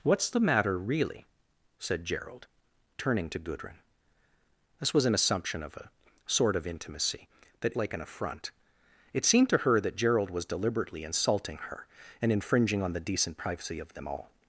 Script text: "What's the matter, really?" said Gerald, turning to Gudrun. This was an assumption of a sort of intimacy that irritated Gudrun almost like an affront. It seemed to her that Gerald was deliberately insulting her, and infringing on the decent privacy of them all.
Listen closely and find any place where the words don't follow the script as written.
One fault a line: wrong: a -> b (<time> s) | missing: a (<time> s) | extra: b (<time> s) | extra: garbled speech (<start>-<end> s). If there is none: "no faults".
missing: irritated Gudrun almost (7.8 s)